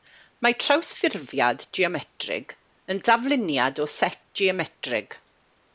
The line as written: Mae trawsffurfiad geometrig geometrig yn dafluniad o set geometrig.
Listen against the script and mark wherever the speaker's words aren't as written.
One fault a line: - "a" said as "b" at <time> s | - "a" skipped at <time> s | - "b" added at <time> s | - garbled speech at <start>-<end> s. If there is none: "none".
- "geometrig" skipped at 2.5 s